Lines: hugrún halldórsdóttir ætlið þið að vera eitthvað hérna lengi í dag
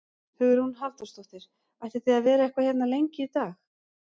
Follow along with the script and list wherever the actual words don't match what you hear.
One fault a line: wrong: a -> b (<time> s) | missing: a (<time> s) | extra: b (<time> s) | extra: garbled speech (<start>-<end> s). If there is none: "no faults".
no faults